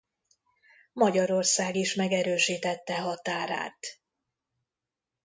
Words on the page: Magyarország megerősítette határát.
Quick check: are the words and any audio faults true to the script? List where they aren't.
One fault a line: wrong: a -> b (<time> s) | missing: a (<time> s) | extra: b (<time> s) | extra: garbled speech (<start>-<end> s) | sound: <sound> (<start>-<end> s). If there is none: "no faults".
extra: is (1.7 s)